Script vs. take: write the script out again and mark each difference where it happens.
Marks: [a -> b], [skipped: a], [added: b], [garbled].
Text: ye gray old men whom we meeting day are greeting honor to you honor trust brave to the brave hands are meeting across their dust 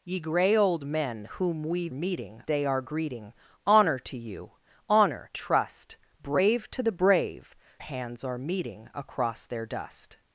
ye gray old men whom we meeting day are greeting honor to you honor trust brave to the brave hands are meeting across their dust